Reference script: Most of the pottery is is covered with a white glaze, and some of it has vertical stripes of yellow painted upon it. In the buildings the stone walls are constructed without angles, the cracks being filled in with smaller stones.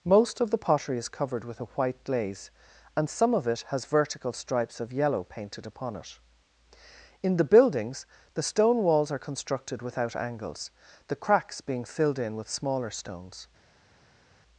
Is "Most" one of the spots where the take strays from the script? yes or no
no